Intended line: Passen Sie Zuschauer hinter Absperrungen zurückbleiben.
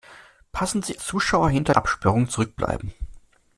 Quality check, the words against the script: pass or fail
pass